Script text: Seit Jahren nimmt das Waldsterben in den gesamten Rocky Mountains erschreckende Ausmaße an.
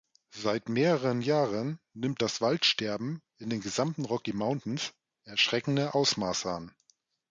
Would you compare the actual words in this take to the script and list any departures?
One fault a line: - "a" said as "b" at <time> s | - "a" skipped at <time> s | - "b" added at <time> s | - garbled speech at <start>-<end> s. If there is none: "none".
- "mehreren" added at 0.7 s